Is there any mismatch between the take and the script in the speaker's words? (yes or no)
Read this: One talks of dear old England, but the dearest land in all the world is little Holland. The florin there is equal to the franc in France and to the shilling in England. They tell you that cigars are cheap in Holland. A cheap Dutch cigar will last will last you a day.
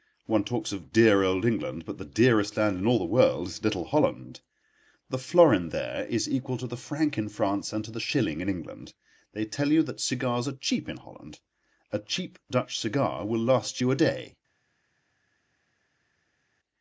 yes